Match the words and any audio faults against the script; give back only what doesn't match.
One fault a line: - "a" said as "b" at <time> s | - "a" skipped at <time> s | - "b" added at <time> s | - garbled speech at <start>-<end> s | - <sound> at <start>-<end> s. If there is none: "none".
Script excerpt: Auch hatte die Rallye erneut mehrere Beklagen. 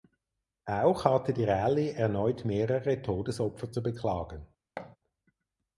- "Todesopfer zu" added at 3.0 s
- thud at 4.8-5.0 s